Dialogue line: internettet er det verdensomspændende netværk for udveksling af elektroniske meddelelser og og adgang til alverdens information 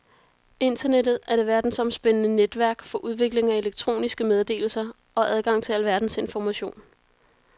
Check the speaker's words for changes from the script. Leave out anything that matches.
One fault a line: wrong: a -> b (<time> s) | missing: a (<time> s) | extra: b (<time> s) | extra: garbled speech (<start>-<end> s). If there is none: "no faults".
missing: og (5.3 s)